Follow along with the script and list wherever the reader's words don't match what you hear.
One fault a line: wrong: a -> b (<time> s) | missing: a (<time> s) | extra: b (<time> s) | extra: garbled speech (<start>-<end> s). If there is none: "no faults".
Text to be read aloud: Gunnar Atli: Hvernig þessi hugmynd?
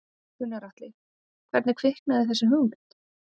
extra: kviknaði (1.8 s)